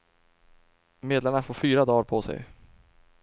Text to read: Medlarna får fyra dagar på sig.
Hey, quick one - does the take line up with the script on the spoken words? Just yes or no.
yes